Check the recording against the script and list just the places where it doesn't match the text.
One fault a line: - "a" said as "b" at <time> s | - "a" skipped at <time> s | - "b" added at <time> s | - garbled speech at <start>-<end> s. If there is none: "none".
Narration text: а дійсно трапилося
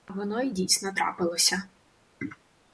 - "воно й" added at 0.1 s